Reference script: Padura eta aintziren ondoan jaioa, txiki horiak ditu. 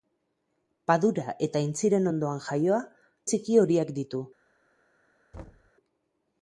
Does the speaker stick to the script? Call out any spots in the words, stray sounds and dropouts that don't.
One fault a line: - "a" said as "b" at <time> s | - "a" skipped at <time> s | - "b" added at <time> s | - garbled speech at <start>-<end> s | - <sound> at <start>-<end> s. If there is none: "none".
- thud at 5.3-5.7 s